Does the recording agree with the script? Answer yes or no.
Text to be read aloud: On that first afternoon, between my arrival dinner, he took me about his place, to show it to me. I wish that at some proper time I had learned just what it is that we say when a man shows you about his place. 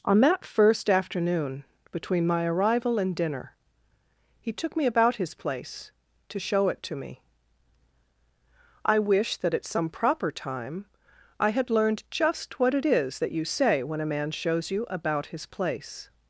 no